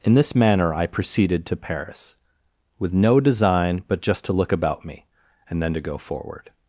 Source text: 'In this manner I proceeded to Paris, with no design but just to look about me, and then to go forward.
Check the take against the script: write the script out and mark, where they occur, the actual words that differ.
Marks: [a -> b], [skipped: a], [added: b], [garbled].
'In this manner I proceeded to Paris, with no design but just to look about me, and then to go forward.